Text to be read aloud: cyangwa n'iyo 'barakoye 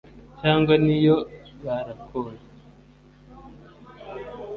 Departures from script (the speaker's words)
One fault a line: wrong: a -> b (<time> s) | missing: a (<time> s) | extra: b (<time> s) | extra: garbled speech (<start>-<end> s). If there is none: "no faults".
no faults